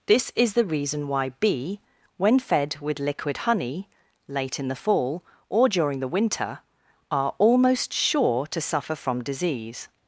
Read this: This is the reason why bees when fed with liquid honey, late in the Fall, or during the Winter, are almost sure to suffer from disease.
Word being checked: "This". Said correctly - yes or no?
yes